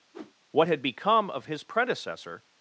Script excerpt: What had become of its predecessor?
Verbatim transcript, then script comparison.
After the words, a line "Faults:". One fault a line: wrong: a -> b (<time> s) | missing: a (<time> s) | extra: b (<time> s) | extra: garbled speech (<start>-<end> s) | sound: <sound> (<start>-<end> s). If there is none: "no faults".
What had become of his predecessor?
Faults:
sound: whoosh (0.1-0.3 s)
wrong: its -> his (1.5 s)